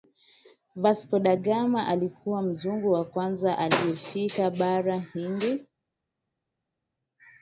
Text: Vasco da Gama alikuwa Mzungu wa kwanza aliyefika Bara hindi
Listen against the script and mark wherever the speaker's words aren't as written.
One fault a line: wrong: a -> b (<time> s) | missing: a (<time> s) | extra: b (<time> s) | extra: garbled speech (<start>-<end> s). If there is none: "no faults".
no faults